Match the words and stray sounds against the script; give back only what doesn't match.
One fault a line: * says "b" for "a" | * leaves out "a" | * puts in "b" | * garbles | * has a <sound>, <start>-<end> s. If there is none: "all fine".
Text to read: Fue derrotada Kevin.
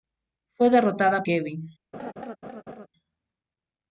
* has a laugh, 1.9-2.9 s